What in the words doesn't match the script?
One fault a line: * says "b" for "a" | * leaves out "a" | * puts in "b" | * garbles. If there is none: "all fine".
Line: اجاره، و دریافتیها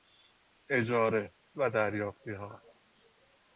all fine